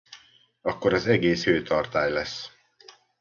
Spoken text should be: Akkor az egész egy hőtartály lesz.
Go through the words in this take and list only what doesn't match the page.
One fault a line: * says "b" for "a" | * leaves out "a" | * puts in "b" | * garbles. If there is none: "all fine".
* leaves out "egy"